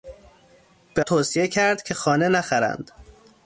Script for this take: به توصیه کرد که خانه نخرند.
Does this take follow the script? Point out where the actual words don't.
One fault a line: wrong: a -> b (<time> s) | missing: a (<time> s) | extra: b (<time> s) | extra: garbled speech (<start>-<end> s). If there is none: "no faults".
no faults